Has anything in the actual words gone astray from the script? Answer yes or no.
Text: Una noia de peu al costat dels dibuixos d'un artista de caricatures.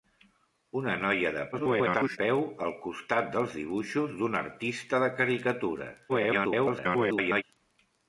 yes